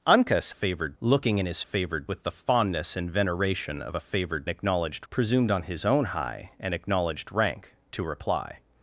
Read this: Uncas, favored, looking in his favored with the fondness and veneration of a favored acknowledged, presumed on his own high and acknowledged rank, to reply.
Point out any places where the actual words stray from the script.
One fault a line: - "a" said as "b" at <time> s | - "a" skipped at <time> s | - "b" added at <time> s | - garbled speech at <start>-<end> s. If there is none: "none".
none